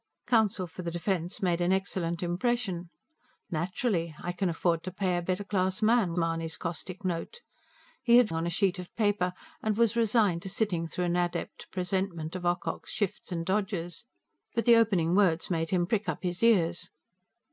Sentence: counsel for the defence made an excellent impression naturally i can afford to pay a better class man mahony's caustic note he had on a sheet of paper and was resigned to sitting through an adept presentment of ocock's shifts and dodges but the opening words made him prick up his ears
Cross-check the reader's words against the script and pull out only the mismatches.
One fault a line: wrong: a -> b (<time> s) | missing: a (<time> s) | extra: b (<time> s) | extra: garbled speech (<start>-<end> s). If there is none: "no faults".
no faults